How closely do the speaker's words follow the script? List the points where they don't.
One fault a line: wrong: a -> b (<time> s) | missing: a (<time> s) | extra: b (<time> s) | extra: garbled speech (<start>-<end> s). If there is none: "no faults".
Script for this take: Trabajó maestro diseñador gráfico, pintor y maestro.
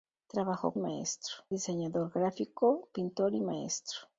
no faults